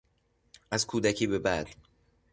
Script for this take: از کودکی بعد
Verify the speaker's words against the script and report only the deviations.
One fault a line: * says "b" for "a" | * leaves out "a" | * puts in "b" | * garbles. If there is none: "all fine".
* puts in "به"